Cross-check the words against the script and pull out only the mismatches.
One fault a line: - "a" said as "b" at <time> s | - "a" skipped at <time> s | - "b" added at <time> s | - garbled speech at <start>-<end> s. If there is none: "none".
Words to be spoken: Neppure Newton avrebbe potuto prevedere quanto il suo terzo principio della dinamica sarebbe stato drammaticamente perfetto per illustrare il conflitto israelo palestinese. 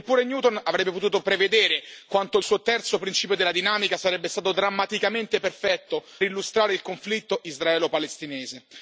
- "per" skipped at 6.0 s